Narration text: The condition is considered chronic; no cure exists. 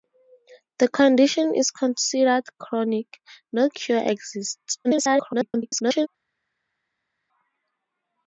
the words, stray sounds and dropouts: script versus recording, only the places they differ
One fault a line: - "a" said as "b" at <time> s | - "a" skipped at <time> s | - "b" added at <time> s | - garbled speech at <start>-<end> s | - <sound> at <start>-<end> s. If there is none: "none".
- garbled speech at 4.8-6.1 s